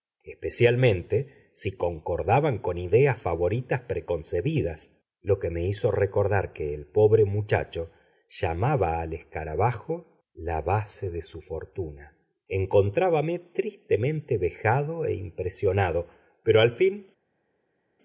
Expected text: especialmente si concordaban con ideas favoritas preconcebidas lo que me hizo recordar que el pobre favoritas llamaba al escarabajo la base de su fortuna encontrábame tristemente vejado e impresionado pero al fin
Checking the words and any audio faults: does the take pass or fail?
fail